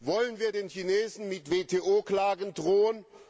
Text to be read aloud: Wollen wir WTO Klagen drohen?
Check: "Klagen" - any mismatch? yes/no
no